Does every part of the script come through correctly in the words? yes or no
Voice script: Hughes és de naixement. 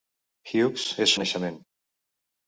yes